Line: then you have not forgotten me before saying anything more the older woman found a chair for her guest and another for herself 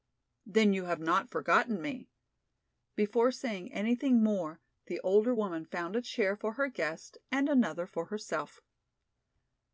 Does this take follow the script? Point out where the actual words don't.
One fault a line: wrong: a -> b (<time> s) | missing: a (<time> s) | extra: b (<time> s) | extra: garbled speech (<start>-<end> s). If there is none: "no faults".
no faults